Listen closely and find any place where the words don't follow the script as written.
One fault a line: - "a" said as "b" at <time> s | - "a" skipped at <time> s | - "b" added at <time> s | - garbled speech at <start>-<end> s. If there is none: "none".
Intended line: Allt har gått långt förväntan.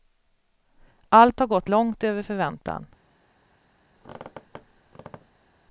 - "över" added at 2.0 s